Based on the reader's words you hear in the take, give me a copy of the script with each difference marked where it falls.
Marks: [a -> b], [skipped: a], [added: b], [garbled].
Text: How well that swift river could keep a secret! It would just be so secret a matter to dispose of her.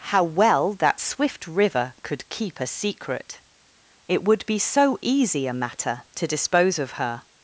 How well that swift river could keep a secret! It would [skipped: just] be so [secret -> easy] a matter to dispose of her.